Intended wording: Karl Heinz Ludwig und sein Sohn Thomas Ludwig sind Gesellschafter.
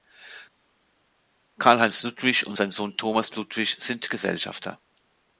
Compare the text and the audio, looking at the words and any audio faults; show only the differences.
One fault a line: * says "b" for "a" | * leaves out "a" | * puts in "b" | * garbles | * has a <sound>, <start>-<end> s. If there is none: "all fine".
all fine